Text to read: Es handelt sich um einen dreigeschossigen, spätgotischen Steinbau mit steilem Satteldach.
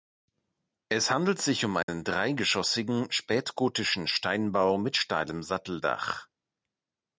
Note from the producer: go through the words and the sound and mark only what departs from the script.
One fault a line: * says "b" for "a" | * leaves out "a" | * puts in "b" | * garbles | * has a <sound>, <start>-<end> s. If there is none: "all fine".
* has a dropout, 1.8-1.9 s